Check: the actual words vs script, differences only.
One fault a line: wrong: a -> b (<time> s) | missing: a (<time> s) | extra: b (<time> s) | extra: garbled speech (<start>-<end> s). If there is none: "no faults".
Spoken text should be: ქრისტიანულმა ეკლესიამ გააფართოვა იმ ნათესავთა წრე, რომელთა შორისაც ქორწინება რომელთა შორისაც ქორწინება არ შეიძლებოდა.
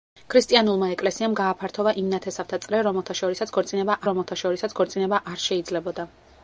no faults